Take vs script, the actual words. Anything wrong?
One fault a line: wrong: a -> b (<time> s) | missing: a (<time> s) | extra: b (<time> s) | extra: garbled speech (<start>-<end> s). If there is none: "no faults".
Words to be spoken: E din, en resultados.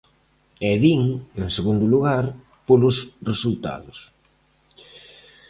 extra: segundo lugar polos (1.6 s)